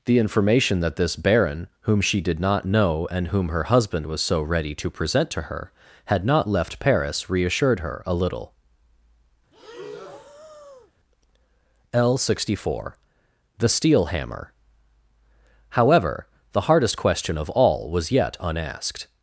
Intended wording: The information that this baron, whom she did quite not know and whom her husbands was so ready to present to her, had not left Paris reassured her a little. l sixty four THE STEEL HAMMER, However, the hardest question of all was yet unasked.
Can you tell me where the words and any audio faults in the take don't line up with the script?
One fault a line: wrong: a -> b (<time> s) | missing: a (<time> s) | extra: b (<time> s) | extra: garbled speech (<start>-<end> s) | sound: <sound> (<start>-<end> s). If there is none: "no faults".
missing: quite (2.4 s)
wrong: husbands -> husband (3.6 s)
sound: breath (9.5-10.9 s)